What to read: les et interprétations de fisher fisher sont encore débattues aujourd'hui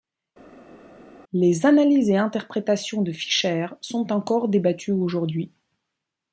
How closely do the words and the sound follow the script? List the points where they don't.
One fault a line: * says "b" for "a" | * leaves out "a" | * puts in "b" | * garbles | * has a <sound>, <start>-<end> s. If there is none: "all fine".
* puts in "analyses"
* leaves out "fisher"